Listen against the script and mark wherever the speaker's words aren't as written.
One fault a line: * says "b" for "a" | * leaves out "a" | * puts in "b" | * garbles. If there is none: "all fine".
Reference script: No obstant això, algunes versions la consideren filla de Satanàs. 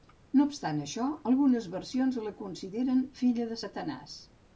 all fine